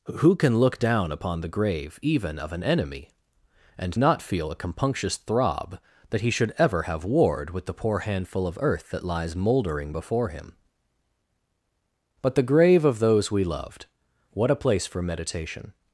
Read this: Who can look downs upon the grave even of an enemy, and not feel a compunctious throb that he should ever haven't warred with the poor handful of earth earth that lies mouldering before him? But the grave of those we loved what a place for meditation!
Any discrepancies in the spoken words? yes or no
yes